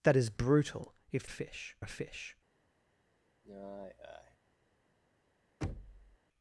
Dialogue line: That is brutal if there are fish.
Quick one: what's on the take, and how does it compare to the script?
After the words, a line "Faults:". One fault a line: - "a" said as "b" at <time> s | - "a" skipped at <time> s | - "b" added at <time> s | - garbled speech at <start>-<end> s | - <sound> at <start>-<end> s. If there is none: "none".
That is brutal if fish are fish.
Faults:
- "there" said as "fish" at 1.3 s
- sigh at 3.4-4.4 s
- thud at 5.6-6.2 s